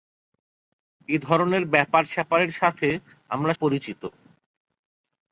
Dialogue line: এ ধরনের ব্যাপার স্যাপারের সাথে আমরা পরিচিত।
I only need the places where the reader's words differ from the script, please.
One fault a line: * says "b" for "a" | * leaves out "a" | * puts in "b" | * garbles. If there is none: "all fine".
all fine